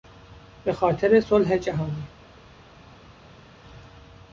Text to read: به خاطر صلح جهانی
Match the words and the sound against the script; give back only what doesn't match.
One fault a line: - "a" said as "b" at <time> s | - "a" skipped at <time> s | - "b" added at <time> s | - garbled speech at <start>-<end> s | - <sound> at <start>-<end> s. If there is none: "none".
none